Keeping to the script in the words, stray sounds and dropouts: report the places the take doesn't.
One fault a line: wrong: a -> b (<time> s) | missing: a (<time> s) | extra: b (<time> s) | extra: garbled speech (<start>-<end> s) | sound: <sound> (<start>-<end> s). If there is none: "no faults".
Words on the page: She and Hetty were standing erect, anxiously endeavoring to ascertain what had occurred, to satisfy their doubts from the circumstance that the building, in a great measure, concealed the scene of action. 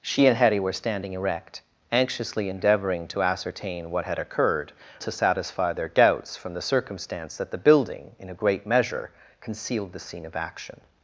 no faults